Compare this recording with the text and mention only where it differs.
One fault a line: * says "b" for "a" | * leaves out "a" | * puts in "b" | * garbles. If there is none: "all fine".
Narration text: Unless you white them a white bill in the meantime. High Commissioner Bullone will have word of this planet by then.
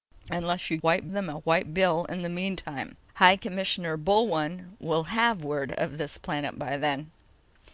all fine